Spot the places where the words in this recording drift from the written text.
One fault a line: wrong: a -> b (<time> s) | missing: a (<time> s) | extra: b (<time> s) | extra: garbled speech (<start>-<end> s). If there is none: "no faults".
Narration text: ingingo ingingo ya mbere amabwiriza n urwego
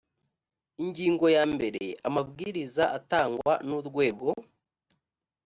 missing: ingingo (1.2 s)
extra: atangwa (3.0 s)